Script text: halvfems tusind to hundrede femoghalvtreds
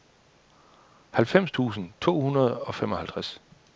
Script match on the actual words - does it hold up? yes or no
no